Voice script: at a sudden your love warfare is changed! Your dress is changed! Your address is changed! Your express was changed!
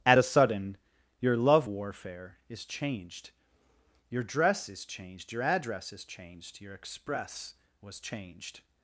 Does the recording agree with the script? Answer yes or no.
yes